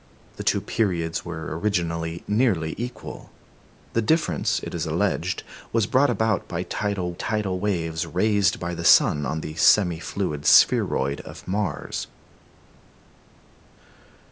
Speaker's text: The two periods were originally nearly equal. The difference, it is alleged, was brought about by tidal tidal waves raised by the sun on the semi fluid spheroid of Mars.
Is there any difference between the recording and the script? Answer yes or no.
no